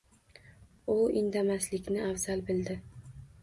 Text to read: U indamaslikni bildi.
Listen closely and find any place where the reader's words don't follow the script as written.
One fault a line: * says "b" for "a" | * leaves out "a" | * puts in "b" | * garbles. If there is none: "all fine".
* puts in "afzal"